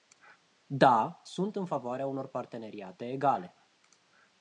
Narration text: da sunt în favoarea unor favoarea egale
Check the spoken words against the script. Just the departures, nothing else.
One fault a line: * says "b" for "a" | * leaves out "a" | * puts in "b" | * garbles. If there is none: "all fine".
* says "parteneriate" for "favoarea"